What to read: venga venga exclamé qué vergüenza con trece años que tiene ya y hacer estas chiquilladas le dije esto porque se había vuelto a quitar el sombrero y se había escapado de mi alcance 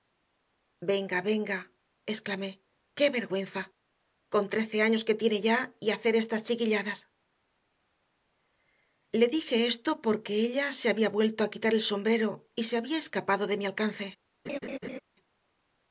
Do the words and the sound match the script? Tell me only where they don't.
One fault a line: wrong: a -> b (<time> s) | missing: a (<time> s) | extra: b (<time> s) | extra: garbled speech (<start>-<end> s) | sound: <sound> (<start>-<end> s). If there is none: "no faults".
extra: ella (10.4 s)
sound: laugh (14.5-15.0 s)